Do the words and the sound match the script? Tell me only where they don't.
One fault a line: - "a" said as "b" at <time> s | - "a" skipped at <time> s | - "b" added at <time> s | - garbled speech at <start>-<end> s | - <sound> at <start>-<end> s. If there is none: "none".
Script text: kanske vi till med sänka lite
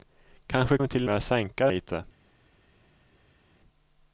none